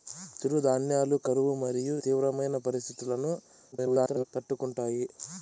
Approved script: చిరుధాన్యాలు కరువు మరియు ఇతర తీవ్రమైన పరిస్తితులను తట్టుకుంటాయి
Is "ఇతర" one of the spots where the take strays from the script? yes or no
yes